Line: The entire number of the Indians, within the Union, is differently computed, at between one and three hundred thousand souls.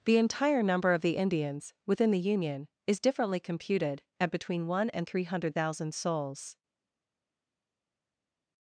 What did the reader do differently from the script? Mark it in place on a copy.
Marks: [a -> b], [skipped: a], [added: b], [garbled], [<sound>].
The entire number of the Indians, within the Union, is differently computed, at between one and three hundred thousand souls.